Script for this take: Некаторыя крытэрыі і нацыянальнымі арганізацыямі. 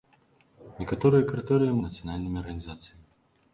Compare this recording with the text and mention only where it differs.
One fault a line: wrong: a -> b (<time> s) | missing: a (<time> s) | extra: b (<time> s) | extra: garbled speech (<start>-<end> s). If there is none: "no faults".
no faults